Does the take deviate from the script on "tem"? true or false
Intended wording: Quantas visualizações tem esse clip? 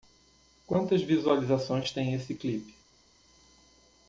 false